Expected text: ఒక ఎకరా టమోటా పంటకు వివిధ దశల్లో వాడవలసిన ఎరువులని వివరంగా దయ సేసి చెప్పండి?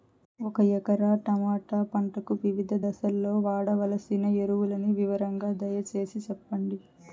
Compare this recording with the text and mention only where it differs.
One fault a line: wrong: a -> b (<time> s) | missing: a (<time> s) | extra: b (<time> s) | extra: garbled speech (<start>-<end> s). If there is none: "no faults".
no faults